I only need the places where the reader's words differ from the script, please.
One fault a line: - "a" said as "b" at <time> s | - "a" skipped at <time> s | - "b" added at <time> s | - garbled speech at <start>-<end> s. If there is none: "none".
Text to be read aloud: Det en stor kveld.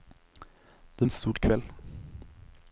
none